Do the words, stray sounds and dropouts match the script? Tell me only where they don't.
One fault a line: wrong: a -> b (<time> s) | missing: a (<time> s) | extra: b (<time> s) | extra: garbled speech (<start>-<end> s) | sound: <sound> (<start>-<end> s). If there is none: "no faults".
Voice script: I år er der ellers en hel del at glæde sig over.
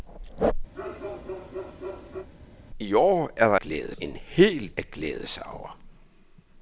sound: bark (0.7-2.3 s)
wrong: ellers -> glæde (3.6 s)
missing: del (4.8 s)